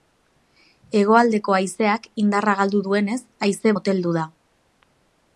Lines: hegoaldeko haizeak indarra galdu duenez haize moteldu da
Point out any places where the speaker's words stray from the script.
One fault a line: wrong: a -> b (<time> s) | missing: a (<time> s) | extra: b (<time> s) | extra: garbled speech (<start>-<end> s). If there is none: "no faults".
no faults